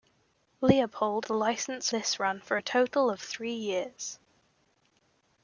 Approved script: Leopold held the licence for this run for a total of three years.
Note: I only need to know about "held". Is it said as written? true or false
false